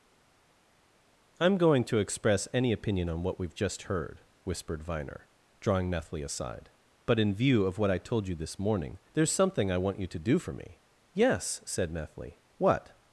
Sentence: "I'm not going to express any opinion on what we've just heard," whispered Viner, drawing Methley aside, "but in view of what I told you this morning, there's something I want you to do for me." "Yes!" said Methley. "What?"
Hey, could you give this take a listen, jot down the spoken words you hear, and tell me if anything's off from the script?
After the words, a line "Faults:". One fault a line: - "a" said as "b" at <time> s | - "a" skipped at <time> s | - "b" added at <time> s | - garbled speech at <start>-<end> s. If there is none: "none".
"I'm going to express any opinion on what we've just heard," whispered Viner, drawing Methley aside, "but in view of what I told you this morning, there's something I want you to do for me." "Yes!" said Methley. "What?"
Faults:
- "not" skipped at 1.6 s